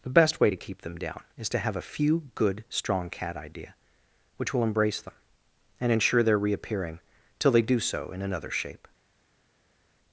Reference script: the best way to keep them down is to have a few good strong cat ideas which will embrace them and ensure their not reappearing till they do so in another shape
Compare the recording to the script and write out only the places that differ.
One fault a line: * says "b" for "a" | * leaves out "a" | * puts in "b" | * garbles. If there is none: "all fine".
* says "idea" for "ideas"
* leaves out "not"